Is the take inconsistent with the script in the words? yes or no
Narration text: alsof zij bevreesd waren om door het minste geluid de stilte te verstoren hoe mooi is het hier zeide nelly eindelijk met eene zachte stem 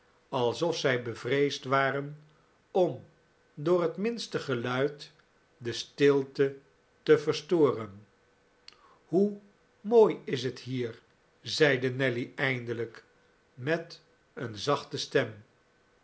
no